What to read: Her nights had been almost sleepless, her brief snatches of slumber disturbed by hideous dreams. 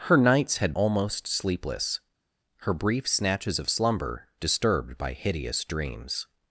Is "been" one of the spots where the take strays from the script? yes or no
yes